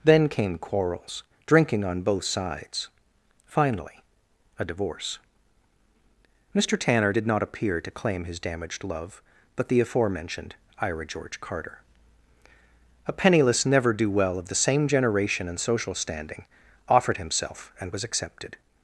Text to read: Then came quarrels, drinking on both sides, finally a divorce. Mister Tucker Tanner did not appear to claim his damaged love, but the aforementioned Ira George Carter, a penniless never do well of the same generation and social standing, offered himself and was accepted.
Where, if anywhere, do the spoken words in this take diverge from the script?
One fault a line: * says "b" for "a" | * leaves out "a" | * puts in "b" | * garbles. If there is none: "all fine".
* leaves out "Tucker"